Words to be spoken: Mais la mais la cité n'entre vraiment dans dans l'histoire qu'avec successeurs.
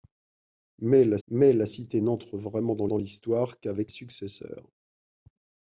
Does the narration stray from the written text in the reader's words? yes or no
no